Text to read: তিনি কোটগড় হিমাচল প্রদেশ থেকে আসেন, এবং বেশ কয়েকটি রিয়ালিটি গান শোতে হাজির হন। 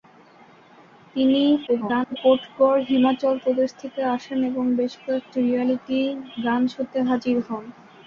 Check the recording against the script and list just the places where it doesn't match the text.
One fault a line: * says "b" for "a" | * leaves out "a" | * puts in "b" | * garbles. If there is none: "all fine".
* garbles